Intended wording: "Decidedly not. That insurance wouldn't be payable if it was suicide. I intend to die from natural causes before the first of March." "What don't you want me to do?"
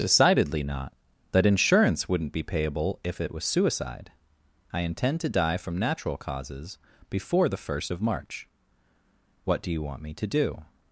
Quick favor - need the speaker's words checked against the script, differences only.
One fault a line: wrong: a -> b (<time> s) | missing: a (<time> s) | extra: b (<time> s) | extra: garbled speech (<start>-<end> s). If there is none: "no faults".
wrong: don't -> do (9.6 s)